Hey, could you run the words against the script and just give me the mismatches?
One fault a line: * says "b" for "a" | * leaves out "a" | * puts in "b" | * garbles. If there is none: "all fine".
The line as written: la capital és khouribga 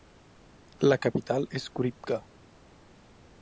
all fine